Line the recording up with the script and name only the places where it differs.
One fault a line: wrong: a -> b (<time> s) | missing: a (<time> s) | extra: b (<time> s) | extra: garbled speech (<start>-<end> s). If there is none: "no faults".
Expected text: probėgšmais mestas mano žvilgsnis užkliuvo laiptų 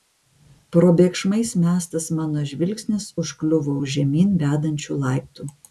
extra: už žemyn vedančių (3.8 s)